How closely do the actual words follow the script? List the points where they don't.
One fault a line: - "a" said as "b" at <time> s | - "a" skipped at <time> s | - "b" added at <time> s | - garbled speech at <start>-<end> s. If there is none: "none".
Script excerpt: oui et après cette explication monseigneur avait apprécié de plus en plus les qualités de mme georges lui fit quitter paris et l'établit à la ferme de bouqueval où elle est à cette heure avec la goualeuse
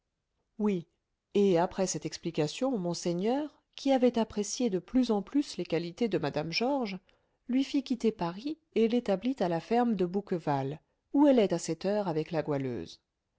- "qui" added at 3.8 s